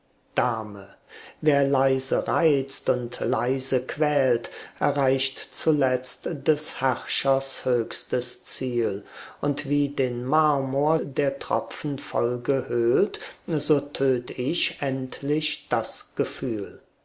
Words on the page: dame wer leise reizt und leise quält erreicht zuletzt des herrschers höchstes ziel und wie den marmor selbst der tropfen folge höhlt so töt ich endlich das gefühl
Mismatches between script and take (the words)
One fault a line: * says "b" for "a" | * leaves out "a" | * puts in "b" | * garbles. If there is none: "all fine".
* leaves out "selbst"